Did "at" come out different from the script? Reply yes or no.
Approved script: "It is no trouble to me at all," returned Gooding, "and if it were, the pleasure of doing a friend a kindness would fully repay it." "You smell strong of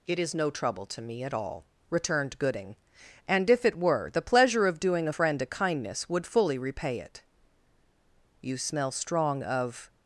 no